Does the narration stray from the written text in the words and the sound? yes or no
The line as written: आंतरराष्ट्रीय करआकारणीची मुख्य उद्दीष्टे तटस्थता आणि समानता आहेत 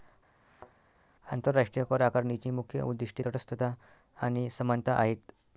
yes